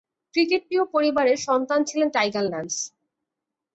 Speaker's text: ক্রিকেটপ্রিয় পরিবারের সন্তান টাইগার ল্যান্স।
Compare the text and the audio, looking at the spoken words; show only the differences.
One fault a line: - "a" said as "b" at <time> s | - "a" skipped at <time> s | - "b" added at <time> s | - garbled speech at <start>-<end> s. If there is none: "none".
- "ছিলেন" added at 1.8 s